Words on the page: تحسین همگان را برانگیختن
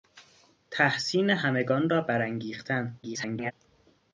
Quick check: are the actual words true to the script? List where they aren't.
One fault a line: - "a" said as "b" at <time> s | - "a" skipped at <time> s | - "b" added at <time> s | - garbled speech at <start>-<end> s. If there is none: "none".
- garbled speech at 3.0-3.5 s